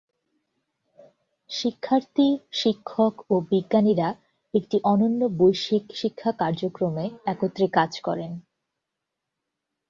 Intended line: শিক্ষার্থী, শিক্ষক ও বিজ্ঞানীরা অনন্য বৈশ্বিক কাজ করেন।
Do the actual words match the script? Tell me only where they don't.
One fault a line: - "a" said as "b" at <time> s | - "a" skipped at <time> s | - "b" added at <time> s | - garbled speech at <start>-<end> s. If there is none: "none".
- "একটি" added at 4.5 s
- "শিক্ষা কার্যক্রমে একত্রে" added at 5.9 s